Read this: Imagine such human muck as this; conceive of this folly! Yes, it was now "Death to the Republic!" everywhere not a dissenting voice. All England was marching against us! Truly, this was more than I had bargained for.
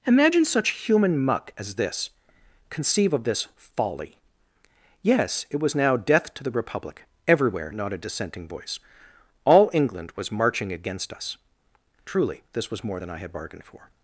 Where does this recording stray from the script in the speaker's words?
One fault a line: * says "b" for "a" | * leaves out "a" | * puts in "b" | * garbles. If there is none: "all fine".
all fine